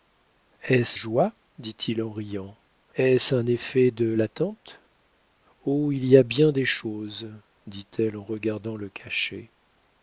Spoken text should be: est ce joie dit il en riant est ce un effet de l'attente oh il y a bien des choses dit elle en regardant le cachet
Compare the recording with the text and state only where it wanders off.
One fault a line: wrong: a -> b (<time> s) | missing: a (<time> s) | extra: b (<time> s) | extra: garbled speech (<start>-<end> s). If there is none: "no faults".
no faults